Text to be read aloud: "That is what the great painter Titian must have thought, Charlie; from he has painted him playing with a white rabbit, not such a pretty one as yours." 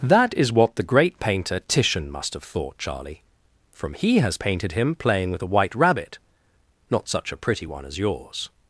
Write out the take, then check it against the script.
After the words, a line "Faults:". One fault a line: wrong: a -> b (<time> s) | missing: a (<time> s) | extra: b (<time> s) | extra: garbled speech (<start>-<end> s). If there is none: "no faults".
"That is what the great painter Titian must have thought, Charlie; from he has painted him playing with a white rabbit, not such a pretty one as yours."
Faults:
no faults